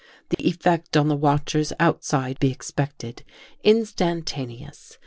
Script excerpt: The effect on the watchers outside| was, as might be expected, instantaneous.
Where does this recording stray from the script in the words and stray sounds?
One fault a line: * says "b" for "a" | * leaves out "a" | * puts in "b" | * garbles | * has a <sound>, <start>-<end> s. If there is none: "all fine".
* has a dropout, 0.3-0.4 s
* leaves out "was as might"